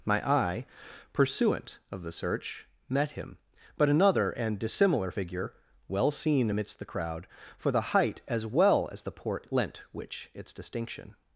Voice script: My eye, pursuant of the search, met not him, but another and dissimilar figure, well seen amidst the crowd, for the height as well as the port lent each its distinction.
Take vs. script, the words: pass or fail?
fail